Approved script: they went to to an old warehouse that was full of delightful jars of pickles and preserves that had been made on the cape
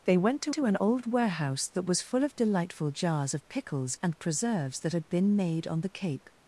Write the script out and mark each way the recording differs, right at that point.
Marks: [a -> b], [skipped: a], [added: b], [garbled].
they went to to an old warehouse that was full of delightful jars of pickles and preserves that had been made on the cape